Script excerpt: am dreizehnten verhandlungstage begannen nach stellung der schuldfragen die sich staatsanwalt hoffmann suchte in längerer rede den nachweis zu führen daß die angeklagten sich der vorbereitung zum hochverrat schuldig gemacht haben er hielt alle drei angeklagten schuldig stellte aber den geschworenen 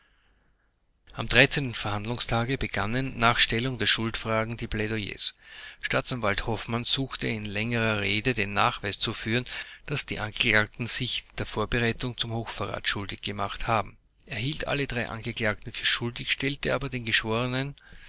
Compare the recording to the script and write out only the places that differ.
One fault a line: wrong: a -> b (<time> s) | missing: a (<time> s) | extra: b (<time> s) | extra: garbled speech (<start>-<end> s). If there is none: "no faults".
wrong: sich -> plädoyers (4.7 s)
extra: für (15.7 s)